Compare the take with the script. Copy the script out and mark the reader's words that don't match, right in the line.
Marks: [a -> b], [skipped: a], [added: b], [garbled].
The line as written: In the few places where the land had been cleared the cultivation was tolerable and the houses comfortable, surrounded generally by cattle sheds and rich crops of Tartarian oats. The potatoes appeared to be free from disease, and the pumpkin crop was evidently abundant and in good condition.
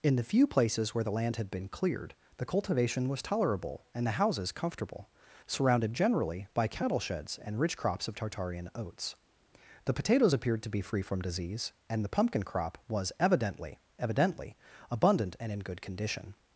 In the few places where the land had been cleared the cultivation was tolerable and the houses comfortable, surrounded generally by cattle sheds and rich crops of Tartarian oats. The potatoes appeared to be free from disease, and the pumpkin crop was evidently [added: evidently] abundant and in good condition.